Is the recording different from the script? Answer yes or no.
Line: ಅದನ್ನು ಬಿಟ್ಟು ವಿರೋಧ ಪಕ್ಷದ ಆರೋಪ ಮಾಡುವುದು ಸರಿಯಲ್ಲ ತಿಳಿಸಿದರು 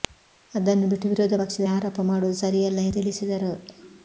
no